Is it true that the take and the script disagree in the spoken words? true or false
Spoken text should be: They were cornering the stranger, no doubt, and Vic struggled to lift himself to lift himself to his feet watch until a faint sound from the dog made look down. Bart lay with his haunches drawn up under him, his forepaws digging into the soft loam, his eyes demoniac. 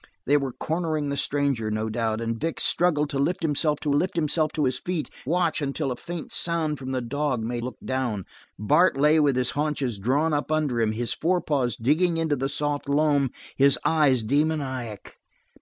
false